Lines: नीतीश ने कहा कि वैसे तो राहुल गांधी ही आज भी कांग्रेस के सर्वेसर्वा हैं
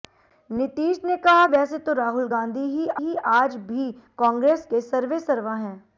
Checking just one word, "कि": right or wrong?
wrong